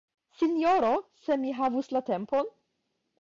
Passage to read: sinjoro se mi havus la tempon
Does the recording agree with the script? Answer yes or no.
yes